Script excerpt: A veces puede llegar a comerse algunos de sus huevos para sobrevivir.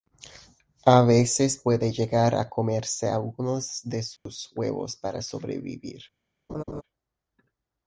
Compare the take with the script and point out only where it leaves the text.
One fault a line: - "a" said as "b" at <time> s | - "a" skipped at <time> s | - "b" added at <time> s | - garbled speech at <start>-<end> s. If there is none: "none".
none